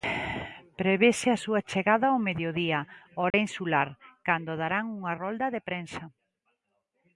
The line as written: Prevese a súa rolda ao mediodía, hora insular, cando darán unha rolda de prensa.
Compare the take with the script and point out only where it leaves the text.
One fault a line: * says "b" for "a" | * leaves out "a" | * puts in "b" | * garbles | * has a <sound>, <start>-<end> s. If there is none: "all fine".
* says "chegada" for "rolda"
* has a dropout, 3.3-3.3 s